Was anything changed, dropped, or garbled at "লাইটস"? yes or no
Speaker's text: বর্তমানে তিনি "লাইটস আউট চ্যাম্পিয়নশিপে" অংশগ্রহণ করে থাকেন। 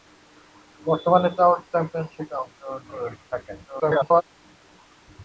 yes